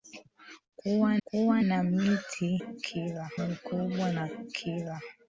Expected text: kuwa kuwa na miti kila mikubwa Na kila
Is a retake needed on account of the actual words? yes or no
no